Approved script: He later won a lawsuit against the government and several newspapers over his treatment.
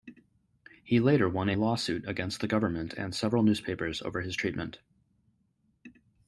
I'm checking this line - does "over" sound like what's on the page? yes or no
yes